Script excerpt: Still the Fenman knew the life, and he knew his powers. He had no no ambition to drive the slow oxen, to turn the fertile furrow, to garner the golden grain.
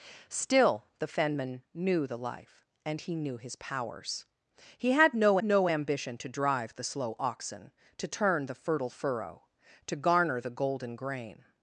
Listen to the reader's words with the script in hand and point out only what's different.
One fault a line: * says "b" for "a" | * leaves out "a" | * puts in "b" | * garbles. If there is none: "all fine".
all fine